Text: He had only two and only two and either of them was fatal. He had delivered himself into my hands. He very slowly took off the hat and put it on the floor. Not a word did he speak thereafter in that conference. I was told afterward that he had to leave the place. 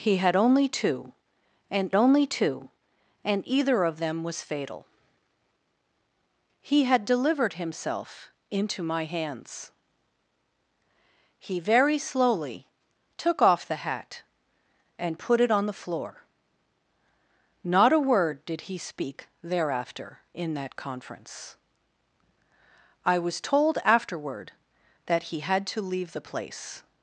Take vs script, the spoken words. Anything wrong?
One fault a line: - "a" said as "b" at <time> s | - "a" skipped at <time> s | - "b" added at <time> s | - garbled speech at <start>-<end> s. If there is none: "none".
none